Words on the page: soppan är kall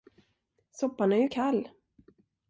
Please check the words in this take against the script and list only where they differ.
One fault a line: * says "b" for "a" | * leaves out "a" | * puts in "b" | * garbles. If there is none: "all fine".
* puts in "ju"